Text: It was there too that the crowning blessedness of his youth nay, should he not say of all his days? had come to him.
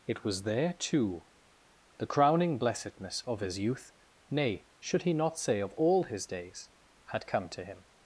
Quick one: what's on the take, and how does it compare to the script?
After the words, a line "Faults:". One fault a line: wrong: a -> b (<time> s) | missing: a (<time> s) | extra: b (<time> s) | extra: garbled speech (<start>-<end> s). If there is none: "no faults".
It was there too the crowning blessedness of his youth nay, should he not say of all his days? had come to him.
Faults:
missing: that (1.2 s)